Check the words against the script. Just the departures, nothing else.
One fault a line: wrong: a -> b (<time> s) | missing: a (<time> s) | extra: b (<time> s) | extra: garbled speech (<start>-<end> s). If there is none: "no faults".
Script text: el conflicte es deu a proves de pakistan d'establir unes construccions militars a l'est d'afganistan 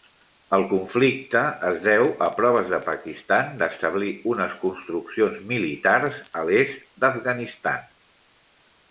no faults